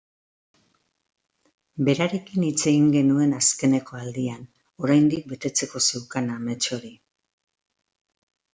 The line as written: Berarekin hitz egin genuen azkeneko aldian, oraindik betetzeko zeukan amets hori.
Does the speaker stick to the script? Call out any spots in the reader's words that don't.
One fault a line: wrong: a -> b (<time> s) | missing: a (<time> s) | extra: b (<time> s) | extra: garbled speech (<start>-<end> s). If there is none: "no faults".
no faults